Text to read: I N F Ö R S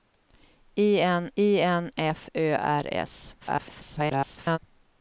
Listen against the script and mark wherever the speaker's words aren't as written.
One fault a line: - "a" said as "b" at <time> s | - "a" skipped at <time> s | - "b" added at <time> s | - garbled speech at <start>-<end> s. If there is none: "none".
- "I N" added at 1.4 s
- garbled speech at 3.4-4.6 s